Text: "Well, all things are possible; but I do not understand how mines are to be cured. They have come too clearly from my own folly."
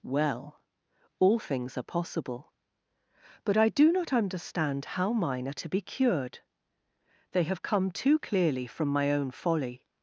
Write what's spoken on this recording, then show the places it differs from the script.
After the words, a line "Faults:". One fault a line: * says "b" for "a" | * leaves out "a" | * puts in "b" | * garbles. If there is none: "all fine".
"Well, all things are possible; but I do not understand how mine are to be cured. They have come too clearly from my own folly."
Faults:
* says "mine" for "mines"